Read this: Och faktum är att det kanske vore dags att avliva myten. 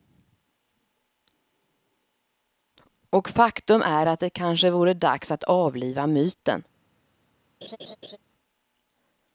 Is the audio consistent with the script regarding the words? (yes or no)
yes